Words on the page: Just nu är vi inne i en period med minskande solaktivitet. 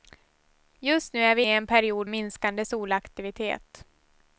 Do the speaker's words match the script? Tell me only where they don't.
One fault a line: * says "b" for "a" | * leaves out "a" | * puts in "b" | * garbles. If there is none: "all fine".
* leaves out "inne"
* leaves out "med"